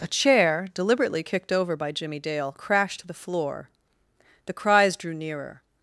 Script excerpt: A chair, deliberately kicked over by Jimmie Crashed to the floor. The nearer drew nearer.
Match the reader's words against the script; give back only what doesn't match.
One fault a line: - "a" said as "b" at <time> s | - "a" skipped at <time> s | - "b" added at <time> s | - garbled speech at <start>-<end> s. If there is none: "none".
- "Dale" added at 2.2 s
- "nearer" said as "cries" at 4.5 s